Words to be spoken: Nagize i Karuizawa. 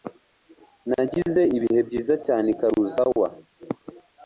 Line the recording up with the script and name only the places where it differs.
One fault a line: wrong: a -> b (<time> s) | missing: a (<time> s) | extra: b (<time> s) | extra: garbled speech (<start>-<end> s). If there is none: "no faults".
extra: ibihe byiza cyane (1.6 s)